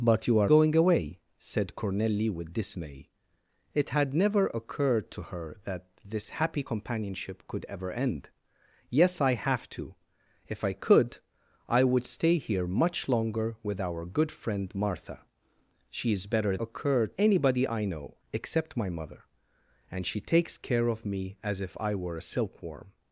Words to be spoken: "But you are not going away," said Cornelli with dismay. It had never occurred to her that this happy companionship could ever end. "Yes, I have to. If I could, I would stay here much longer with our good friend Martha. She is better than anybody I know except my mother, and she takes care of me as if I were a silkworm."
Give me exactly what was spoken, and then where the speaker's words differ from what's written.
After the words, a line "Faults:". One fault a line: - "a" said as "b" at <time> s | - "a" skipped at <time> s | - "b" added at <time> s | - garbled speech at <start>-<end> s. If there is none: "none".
"But you are going away," said Cornelli with dismay. It had never occurred to her that this happy companionship could ever end. "Yes, I have to. If I could, I would stay here much longer with our good friend Martha. She is better occurred anybody I know except my mother, and she takes care of me as if I were a silkworm."
Faults:
- "not" skipped at 0.5 s
- "than" said as "occurred" at 16.5 s